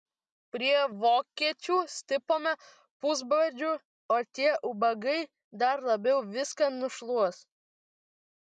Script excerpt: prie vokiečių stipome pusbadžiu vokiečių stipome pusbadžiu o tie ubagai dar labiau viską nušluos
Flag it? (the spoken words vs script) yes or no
yes